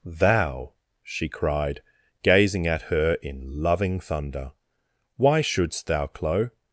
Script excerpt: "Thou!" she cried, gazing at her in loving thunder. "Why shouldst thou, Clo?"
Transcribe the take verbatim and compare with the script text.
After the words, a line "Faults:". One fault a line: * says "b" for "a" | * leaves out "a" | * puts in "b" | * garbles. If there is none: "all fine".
"Thou!" she cried, gazing at her in loving thunder. "Why shouldst thou, Clo?"
Faults:
all fine